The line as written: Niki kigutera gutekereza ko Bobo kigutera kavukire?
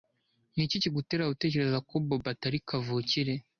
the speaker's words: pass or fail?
fail